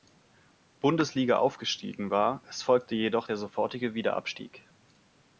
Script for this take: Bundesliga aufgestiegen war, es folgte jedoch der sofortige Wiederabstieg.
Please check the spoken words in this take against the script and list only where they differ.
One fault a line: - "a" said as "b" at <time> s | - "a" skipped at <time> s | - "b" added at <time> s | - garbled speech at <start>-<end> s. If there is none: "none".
none